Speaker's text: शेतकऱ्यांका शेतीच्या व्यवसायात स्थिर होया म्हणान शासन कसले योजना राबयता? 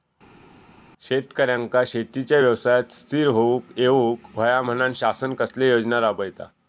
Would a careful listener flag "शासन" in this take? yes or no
no